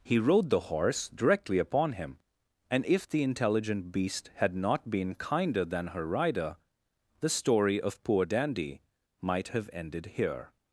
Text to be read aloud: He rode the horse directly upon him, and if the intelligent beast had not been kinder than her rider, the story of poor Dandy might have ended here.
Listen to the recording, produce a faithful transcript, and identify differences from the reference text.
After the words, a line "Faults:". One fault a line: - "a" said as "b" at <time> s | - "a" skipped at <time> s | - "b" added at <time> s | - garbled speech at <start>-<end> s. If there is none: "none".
He rode the horse directly upon him, and if the intelligent beast had not been kinder than her rider, the story of poor Dandy might have ended here.
Faults:
none